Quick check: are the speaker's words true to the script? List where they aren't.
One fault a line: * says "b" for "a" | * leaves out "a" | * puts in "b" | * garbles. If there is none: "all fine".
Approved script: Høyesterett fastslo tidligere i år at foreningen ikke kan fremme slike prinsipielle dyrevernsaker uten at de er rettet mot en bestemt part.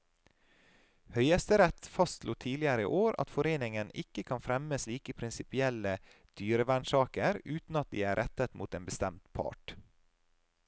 all fine